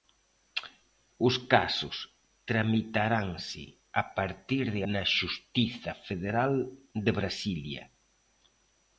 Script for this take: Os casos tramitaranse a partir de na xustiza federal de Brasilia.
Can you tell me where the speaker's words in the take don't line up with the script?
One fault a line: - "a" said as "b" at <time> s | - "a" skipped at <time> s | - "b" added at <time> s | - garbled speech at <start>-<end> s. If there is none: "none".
none